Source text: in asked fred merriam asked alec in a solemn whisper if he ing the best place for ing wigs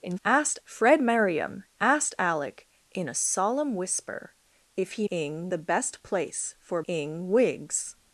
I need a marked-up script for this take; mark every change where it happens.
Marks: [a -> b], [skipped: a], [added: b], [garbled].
in asked fred merriam asked alec in a solemn whisper if he ing the best place for ing wigs